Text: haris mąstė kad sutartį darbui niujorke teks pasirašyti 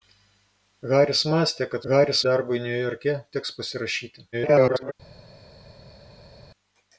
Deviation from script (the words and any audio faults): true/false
true